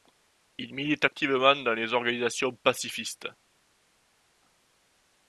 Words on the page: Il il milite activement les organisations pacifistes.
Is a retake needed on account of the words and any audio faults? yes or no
yes